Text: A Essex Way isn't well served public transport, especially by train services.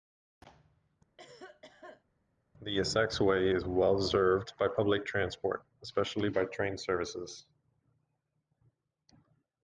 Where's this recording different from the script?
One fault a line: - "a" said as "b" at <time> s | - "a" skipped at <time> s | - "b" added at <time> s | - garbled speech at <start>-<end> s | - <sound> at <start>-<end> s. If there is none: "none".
- cough at 1.2-2.0 s
- "A" said as "The" at 2.6 s
- "isn't" said as "is" at 3.5 s
- "by" added at 4.6 s